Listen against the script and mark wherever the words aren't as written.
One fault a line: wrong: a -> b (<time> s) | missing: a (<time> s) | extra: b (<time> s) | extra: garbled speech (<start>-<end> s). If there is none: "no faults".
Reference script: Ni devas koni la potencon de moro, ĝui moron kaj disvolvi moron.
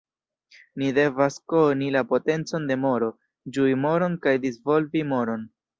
no faults